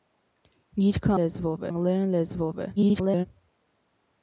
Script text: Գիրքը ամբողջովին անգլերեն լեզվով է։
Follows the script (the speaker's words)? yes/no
no